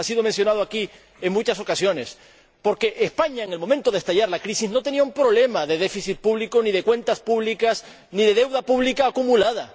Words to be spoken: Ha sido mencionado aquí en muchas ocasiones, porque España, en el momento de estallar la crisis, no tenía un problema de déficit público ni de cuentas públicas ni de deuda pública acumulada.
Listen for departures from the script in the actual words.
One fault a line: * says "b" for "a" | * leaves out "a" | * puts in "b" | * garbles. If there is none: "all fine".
all fine